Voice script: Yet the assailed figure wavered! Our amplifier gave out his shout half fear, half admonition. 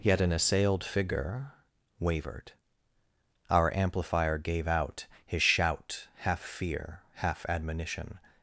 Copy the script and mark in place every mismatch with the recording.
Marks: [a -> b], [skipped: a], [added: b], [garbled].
Yet [the -> an] assailed figure wavered! Our amplifier gave out his shout half fear, half admonition.